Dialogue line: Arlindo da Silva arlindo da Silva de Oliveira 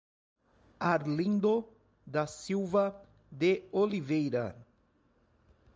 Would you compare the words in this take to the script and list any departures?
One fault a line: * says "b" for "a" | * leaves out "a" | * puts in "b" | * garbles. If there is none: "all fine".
* leaves out "arlindo da Silva"